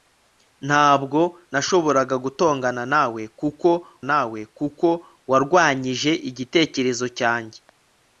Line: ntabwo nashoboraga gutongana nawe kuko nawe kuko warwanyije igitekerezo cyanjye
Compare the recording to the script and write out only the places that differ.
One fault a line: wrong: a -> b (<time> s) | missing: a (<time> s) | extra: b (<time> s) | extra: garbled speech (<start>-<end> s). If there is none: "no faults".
no faults